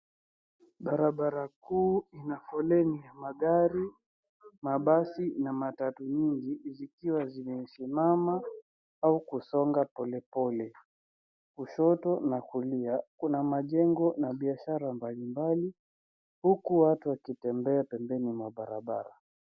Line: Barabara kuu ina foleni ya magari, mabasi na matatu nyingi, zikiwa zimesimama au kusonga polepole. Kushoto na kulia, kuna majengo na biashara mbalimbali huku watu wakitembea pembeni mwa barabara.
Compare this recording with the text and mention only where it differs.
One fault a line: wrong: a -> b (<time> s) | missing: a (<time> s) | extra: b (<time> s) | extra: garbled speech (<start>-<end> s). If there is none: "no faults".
no faults